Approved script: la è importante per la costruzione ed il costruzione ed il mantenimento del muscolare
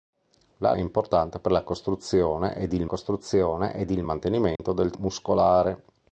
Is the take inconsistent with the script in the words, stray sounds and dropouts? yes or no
yes